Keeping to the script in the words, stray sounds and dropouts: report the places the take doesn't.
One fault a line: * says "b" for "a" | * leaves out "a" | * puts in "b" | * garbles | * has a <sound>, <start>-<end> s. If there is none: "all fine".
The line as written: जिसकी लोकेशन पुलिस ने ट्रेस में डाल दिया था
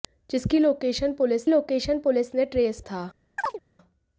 * puts in "लोकेशन पुलिस"
* leaves out "में डाल दिया"
* has a chirp, 3.4-3.6 s